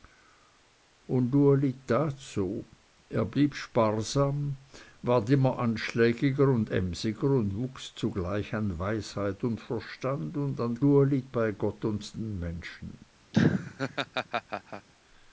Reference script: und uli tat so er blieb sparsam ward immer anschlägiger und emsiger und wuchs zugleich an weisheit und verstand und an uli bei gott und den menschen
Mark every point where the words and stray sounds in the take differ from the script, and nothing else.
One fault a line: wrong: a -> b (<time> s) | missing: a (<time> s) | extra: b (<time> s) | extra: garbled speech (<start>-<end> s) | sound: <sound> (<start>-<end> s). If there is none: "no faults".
sound: laugh (13.3-14.9 s)